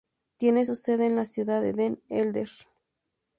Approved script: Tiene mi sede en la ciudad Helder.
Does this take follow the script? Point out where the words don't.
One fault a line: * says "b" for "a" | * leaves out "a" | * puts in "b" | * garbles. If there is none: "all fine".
* says "su" for "mi"
* puts in "de Den"